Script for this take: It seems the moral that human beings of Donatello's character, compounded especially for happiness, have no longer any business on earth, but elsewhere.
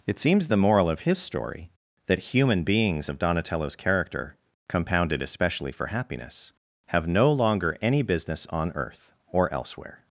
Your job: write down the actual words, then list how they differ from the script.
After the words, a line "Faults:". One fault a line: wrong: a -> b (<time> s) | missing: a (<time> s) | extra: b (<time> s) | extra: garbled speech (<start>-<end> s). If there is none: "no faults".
It seems the moral of his story, that human beings of Donatello's character, compounded especially for happiness, have no longer any business on earth, or elsewhere.
Faults:
extra: of his story (0.9 s)
wrong: but -> or (9.3 s)